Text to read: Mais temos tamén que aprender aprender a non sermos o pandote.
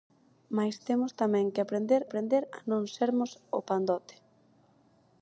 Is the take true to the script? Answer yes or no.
yes